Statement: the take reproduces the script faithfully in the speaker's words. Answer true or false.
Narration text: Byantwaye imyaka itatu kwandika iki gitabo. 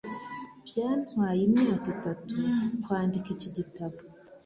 true